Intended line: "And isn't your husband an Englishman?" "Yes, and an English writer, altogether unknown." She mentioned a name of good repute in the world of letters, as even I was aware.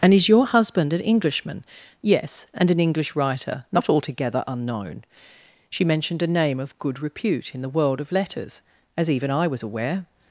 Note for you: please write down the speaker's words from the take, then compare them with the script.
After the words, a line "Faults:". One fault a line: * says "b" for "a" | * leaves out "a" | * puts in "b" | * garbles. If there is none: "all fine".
"And is your husband an Englishman?" "Yes, and an English writer, not altogether unknown." She mentioned a name of good repute in the world of letters, as even I was aware.
Faults:
* says "is" for "isn't"
* puts in "not"